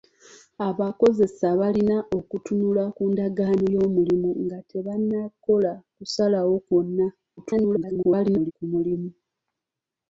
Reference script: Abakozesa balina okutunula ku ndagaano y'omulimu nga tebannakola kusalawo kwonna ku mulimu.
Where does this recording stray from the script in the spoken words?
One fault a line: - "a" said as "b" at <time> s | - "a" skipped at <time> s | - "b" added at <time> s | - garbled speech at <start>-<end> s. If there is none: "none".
- garbled speech at 7.4-8.5 s